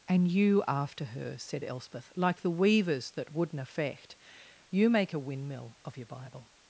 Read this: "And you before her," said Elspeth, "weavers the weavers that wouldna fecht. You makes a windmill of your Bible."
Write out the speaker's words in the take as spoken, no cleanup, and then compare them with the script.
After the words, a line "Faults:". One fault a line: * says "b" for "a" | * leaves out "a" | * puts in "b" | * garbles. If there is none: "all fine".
"And you after her," said Elspeth, "like the weavers that wouldna fecht. You make a windmill of your Bible."
Faults:
* says "after" for "before"
* says "like" for "weavers"
* says "make" for "makes"